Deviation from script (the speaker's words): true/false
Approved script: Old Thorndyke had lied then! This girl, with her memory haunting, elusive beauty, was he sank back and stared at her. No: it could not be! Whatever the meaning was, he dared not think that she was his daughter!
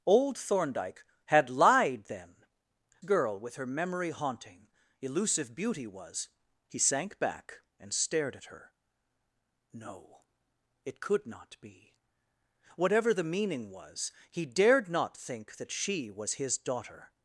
true